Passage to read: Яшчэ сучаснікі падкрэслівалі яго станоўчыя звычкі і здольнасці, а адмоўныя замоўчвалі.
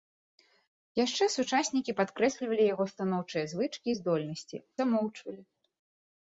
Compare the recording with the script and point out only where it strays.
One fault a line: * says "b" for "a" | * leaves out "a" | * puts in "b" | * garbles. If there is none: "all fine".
* leaves out "а адмоўныя"